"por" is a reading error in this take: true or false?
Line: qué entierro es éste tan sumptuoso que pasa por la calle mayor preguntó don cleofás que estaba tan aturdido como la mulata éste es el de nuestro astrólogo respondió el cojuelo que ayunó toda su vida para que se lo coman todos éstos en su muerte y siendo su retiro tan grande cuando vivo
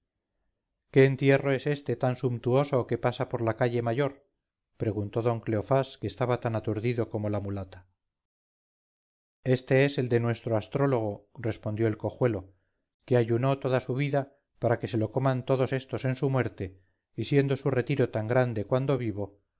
false